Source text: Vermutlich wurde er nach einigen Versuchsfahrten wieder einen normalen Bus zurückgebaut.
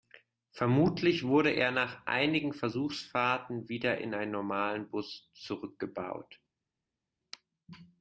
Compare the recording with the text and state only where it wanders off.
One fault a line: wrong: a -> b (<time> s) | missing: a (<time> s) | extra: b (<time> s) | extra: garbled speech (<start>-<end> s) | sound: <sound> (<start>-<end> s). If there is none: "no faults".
extra: in (4.0 s)